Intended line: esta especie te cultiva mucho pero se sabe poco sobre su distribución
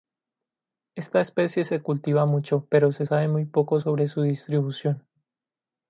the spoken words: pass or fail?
fail